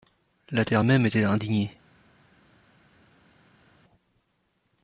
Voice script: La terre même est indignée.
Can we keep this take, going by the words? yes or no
no